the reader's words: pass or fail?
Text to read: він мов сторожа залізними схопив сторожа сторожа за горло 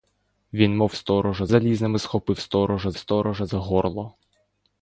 pass